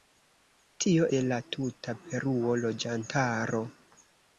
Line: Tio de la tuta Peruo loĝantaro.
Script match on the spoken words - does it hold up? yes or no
yes